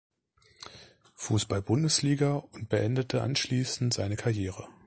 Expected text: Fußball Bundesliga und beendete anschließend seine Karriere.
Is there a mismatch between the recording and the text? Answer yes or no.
no